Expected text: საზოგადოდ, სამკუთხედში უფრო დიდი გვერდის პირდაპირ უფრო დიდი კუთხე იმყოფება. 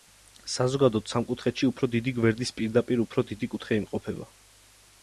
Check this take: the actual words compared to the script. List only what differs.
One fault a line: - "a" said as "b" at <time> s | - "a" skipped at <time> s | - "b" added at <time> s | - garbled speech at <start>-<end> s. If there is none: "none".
none